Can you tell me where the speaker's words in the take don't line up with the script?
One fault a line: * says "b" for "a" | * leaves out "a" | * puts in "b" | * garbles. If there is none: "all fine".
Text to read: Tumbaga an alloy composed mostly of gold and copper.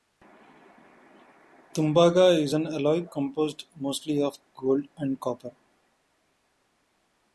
* puts in "is"